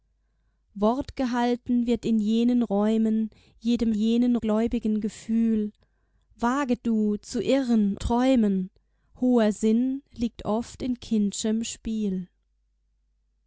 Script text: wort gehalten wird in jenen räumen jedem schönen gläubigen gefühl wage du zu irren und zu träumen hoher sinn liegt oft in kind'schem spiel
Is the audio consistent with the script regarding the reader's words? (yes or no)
no